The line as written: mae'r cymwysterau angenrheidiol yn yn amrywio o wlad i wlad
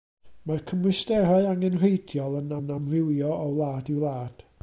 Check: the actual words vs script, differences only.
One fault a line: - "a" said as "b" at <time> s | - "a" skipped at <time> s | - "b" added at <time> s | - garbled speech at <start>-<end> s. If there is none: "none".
none